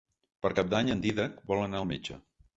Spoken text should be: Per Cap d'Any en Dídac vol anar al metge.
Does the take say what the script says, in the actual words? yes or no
yes